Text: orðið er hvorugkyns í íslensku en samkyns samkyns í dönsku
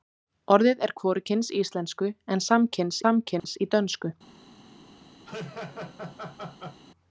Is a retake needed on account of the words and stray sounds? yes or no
yes